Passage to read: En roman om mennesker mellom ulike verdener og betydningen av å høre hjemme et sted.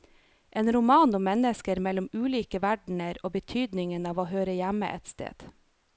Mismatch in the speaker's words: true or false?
false